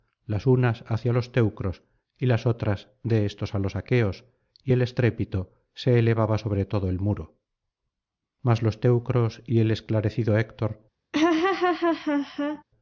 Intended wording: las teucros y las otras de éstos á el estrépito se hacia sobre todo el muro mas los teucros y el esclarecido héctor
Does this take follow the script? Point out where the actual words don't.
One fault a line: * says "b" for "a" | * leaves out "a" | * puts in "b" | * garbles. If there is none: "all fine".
* puts in "unas hacia los"
* puts in "los aqueos y"
* says "elevaba" for "hacia"